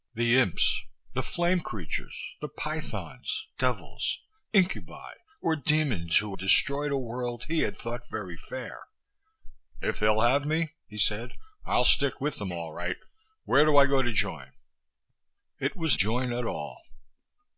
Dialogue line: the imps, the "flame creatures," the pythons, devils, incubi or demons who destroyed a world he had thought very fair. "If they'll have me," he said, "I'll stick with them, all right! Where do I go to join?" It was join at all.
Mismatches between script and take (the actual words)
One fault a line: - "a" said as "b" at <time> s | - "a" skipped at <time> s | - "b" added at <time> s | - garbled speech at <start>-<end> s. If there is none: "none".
none